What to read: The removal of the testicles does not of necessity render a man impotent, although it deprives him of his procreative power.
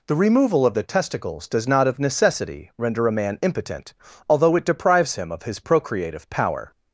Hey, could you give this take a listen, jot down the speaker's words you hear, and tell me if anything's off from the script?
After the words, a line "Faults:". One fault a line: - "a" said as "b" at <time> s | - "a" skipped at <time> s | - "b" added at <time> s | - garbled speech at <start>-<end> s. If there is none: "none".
The removal of the testicles does not of necessity render a man impotent, although it deprives him of his procreative power.
Faults:
none